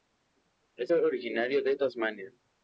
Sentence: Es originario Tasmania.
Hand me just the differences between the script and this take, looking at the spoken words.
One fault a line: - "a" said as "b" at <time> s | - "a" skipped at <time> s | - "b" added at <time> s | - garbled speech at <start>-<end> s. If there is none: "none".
- "de" added at 1.6 s